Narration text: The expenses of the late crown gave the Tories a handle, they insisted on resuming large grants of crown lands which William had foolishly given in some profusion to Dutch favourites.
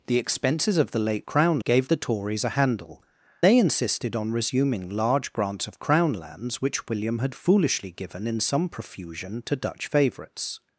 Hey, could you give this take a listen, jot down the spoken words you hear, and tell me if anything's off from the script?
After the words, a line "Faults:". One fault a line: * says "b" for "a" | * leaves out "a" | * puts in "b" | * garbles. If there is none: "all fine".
The expenses of the late crown gave the Tories a handle, they insisted on resuming large grants of crown lands which William had foolishly given in some profusion to Dutch favourites.
Faults:
all fine